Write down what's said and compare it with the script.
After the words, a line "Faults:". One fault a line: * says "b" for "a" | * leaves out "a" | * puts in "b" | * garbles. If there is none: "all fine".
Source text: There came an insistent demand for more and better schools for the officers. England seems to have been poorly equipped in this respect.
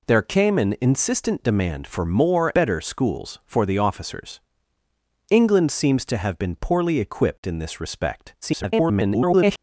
There came an insistent demand for more better schools for the officers. England seems to have been poorly equipped in this respect. [garbled]
Faults:
* leaves out "and"
* garbles